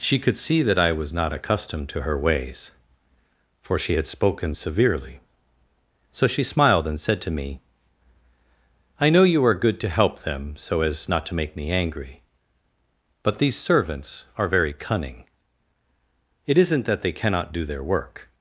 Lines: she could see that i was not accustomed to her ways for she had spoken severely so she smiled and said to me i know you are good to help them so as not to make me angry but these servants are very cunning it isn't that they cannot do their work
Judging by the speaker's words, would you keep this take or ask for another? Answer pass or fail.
pass